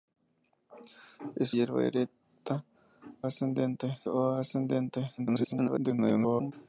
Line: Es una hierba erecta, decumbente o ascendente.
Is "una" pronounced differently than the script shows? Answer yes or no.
yes